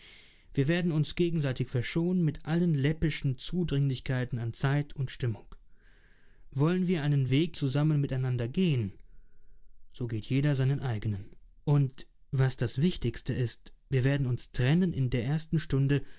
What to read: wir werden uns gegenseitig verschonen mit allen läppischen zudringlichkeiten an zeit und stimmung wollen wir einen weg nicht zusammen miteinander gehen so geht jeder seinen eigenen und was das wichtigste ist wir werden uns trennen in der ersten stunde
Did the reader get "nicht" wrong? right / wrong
wrong